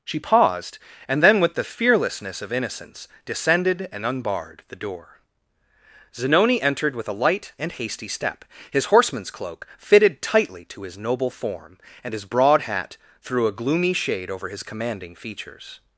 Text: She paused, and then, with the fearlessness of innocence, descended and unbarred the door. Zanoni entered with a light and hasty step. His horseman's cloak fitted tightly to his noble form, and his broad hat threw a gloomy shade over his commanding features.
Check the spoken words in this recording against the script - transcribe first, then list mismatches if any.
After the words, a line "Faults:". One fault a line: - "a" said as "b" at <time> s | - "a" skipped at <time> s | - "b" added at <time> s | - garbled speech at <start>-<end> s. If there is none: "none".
She paused, and then, with the fearlessness of innocence, descended and unbarred the door. Zanoni entered with a light and hasty step. His horseman's cloak fitted tightly to his noble form, and his broad hat threw a gloomy shade over his commanding features.
Faults:
none